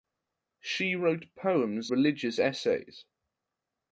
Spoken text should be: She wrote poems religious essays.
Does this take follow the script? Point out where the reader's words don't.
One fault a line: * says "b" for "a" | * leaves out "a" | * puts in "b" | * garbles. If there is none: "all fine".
all fine